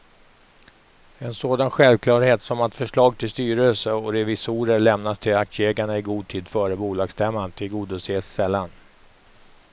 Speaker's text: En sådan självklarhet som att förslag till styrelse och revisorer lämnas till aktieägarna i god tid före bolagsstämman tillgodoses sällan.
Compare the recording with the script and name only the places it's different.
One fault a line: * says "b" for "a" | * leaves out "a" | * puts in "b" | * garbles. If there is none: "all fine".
all fine